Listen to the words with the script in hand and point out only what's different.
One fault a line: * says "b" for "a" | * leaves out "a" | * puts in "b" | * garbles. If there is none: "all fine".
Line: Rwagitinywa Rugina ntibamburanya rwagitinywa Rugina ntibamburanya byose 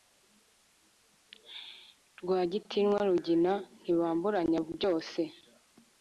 * leaves out "rwagitinywa Rugina ntibamburanya"